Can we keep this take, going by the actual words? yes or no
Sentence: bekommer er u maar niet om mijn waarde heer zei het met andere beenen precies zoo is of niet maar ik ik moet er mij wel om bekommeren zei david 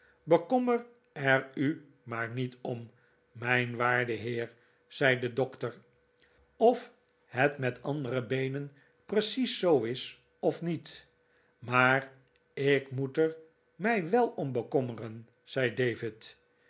no